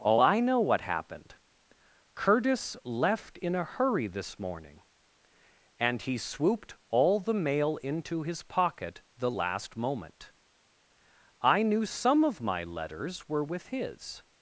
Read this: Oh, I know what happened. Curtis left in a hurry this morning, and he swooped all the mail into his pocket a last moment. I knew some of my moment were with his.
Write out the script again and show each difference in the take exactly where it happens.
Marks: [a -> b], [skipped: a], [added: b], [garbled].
Oh, I know what happened. Curtis left in a hurry this morning, and he swooped all the mail into his pocket [a -> the] last moment. I knew some of my [moment -> letters] were with his.